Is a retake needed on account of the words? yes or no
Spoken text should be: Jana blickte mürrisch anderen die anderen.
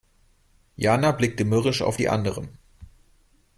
yes